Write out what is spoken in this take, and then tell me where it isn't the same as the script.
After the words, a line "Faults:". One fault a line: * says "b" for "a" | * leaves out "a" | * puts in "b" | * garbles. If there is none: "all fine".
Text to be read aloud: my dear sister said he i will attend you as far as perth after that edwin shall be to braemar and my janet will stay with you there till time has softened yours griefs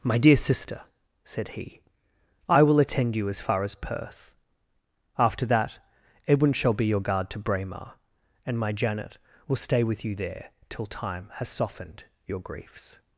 my dear sister said he i will attend you as far as perth after that edwin shall be your guard to braemar and my janet will stay with you there till time has softened your griefs
Faults:
* puts in "your guard"
* says "your" for "yours"